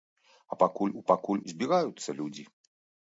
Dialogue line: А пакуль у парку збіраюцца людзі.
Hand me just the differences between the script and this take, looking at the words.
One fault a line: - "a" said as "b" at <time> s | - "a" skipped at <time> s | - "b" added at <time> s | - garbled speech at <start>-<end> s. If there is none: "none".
- "парку" said as "пакуль" at 1.1 s